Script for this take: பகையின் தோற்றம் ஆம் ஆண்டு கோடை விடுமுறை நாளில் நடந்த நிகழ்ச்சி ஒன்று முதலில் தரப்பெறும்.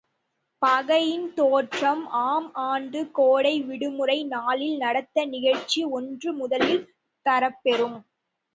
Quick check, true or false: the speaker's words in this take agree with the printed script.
true